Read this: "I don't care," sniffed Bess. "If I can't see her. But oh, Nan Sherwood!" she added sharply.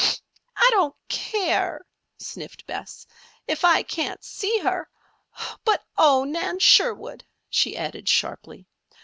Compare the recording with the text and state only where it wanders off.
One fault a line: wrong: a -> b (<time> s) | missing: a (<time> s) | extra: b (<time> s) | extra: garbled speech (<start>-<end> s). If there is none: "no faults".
no faults